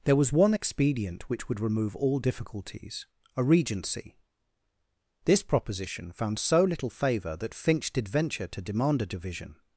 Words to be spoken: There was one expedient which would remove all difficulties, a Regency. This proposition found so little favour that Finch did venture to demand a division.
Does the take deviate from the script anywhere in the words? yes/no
no